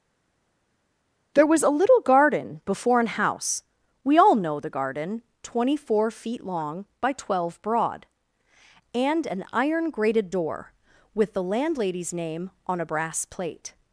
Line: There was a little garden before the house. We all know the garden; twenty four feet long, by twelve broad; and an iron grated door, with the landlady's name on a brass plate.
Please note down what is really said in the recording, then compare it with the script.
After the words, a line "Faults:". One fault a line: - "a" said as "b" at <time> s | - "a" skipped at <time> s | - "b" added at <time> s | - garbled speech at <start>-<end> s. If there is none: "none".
There was a little garden before an house. We all know the garden; twenty four feet long, by twelve broad; and an iron grated door, with the landlady's name on a brass plate.
Faults:
- "the" said as "an" at 3.0 s